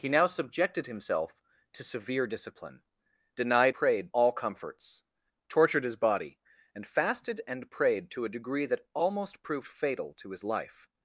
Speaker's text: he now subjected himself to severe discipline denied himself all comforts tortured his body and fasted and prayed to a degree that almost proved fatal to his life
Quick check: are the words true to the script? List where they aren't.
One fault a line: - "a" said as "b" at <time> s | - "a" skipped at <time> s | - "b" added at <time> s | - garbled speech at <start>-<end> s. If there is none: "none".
- "himself" said as "prayed" at 3.7 s